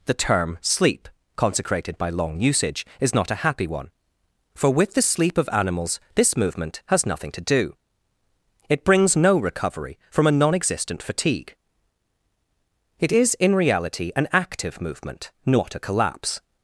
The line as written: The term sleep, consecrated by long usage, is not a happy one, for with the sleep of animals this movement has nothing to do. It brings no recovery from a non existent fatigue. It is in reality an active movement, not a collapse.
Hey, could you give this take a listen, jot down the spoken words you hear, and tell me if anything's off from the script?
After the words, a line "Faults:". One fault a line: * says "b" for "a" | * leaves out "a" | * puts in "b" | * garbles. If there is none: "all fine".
The term sleep, consecrated by long usage, is not a happy one, for with the sleep of animals this movement has nothing to do. It brings no recovery from a non existent fatigue. It is in reality an active movement, not a collapse.
Faults:
all fine